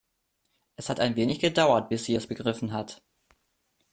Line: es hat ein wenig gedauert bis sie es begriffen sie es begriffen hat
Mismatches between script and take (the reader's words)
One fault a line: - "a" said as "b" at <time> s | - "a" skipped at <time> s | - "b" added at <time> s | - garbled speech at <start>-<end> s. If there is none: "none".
- "sie es begriffen" skipped at 2.7 s